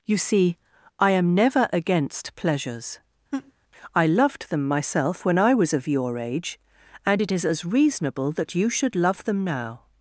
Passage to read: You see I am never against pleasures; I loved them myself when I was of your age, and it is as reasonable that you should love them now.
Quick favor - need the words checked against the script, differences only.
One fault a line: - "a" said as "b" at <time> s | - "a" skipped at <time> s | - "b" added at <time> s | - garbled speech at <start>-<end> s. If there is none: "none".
none